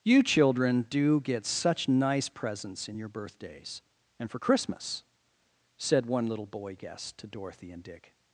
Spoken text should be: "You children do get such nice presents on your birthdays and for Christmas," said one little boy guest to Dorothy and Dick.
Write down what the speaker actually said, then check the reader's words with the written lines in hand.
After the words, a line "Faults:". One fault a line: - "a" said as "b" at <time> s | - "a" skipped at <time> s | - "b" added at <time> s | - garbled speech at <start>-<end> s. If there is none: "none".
"You children do get such nice presents in your birthdays and for Christmas," said one little boy guest to Dorothy and Dick.
Faults:
- "on" said as "in" at 2.9 s